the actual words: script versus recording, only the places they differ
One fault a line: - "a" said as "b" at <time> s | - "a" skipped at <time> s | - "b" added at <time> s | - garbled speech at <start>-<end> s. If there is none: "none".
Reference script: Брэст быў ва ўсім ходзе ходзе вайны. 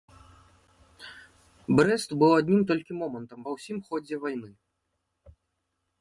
- "адным толькі момантам" added at 2.4 s
- "ходзе" skipped at 4.1 s